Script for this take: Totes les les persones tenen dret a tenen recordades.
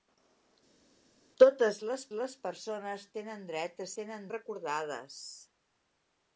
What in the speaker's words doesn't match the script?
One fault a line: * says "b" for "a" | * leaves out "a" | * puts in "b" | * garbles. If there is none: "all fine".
all fine